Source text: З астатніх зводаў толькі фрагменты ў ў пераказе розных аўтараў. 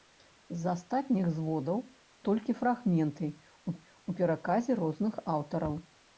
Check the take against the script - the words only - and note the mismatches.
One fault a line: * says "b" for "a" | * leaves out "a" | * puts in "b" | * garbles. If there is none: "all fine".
all fine